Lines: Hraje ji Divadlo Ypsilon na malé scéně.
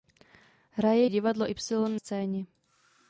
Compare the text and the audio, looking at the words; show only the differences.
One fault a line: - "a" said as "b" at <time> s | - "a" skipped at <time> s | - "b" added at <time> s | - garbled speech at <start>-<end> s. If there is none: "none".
- "ji" skipped at 1.1 s
- "na malé" skipped at 2.0 s